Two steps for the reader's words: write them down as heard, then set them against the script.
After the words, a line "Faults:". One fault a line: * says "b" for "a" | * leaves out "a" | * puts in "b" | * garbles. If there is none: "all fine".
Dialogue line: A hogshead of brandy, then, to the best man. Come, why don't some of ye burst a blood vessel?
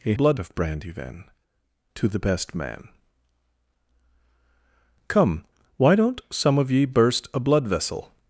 A blood of brandy, then, to the best man. Come, why don't some of ye burst a blood vessel?
Faults:
* says "blood" for "hogshead"